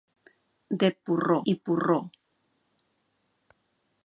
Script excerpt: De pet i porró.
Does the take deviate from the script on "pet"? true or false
true